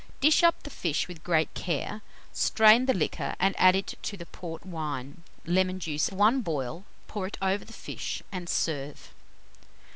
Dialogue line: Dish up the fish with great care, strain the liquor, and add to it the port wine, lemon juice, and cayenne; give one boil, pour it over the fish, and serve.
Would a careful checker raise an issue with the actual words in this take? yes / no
yes